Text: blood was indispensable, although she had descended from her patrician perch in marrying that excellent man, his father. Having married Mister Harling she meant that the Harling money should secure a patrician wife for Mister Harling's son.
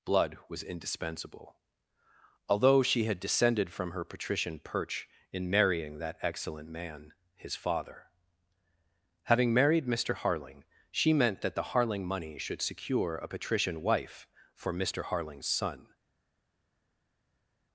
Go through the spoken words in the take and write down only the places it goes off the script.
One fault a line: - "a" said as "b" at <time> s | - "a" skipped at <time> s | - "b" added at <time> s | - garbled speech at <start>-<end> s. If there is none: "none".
none